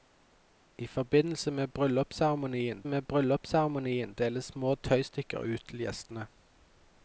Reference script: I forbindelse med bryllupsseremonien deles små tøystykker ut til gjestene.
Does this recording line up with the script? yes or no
no